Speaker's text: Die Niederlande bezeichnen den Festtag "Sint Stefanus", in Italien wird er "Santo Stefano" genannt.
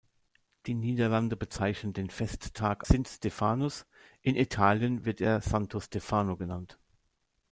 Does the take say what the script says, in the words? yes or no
yes